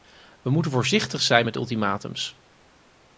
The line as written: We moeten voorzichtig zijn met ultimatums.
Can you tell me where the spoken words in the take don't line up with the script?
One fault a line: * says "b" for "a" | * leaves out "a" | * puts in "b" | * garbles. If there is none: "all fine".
all fine